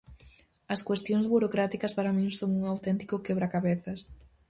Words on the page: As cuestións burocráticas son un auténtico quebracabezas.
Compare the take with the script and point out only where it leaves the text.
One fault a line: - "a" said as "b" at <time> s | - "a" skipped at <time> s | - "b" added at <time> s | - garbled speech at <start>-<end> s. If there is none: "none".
- "para min" added at 2.0 s